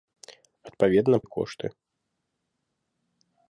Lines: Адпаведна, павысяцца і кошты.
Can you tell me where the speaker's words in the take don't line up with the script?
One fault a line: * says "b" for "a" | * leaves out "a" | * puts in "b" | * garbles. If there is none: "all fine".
* leaves out "павысяцца"